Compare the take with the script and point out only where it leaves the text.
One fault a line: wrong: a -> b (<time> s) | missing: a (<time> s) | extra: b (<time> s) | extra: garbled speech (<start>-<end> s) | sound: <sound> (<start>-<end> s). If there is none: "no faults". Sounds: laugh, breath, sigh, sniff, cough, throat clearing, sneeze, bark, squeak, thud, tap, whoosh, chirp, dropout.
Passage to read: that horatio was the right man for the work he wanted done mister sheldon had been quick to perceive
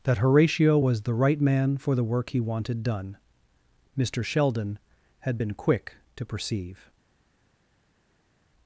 no faults